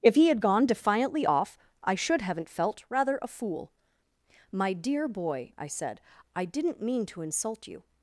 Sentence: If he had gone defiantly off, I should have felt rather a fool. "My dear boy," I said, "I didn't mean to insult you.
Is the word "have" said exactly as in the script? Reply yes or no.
no